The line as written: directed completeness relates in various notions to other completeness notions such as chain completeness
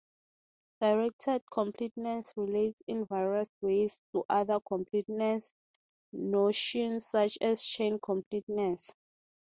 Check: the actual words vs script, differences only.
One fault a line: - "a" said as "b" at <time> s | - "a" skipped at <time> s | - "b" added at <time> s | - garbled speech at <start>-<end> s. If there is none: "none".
- "notions" said as "ways" at 3.6 s